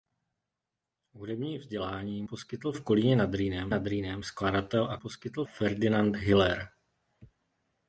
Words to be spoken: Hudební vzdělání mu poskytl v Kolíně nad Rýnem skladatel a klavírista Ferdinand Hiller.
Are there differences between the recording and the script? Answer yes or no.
yes